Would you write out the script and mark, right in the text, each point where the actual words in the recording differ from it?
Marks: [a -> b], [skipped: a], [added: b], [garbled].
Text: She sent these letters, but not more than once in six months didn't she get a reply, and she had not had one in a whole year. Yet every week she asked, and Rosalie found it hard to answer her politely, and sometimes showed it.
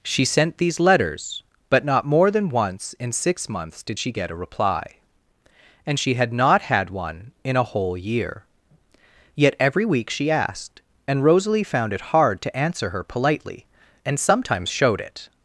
She sent these letters, but not more than once in six months [didn't -> did] she get a reply, and she had not had one in a whole year. Yet every week she asked, and Rosalie found it hard to answer her politely, and sometimes showed it.